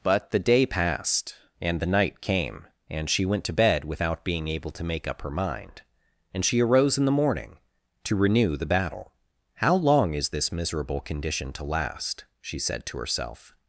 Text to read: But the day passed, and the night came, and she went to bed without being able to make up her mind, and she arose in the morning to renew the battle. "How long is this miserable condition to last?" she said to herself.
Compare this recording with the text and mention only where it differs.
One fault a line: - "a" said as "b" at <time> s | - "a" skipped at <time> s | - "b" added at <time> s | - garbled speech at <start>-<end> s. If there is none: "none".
none